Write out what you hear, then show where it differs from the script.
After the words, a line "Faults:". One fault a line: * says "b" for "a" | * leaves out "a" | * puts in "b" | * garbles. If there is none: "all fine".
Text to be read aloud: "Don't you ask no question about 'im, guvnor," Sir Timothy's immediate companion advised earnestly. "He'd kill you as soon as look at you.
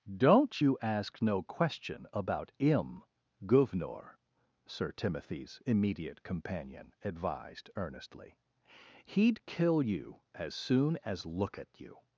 "Don't you ask no question about 'im, guvnor," Sir Timothy's immediate companion advised earnestly. "He'd kill you as soon as look at you.
Faults:
all fine